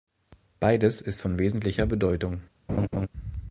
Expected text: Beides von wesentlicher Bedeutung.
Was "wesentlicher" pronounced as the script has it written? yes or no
yes